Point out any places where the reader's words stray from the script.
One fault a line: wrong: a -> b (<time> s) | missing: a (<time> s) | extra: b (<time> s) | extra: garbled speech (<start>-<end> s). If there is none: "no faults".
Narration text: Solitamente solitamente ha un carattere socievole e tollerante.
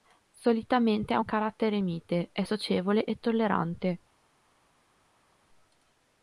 missing: solitamente (1.1 s)
extra: mite è (1.8 s)